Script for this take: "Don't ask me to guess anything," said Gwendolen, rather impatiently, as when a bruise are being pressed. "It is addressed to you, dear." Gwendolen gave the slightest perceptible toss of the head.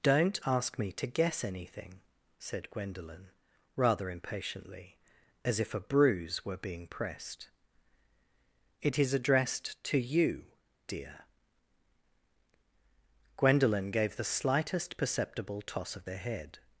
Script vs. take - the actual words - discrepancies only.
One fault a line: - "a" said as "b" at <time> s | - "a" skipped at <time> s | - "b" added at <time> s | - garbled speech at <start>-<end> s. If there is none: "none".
- "when" said as "if" at 5.6 s
- "are" said as "were" at 6.4 s